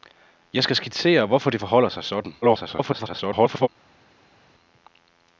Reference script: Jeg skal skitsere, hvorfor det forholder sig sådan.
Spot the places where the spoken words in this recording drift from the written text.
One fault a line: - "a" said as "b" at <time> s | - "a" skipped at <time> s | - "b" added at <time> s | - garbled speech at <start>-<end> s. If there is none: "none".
- garbled speech at 2.4-3.7 s